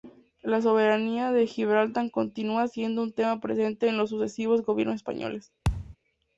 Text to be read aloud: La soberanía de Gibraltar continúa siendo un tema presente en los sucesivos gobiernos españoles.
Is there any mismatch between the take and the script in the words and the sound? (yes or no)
yes